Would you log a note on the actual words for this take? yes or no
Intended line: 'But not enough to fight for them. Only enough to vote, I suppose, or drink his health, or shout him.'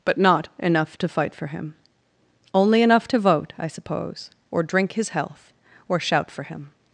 yes